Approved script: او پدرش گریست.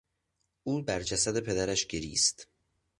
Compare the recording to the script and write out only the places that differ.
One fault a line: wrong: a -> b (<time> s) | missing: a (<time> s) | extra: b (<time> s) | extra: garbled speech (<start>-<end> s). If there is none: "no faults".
extra: بر جسد (0.8 s)